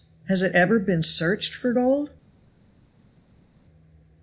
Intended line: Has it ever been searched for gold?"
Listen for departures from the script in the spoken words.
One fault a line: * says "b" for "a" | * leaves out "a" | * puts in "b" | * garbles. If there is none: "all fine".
all fine